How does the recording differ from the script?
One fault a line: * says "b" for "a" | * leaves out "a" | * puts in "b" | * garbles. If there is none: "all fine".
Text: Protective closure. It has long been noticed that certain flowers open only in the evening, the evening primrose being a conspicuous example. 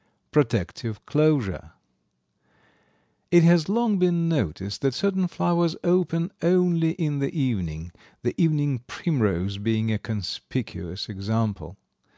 all fine